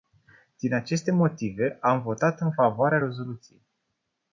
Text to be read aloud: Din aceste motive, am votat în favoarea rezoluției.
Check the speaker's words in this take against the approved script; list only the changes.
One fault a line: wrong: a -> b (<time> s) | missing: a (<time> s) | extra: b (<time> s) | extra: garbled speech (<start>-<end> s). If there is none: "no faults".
no faults